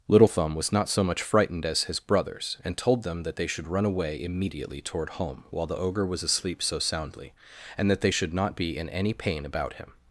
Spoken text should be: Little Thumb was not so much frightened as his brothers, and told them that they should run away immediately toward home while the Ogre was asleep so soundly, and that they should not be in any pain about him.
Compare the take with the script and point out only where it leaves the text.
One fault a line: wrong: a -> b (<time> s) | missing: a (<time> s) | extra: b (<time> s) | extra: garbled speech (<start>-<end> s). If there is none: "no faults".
no faults